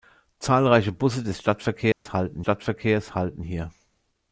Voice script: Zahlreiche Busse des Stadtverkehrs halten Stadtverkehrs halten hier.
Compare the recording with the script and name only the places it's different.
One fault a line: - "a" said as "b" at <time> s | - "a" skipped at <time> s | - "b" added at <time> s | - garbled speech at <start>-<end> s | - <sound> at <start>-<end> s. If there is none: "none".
- dropout at 1.9-2.1 s